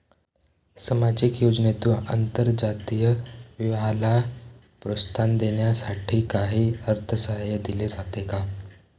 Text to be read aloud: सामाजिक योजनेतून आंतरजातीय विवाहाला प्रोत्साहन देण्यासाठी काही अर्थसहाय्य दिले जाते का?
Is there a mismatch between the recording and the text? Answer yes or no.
no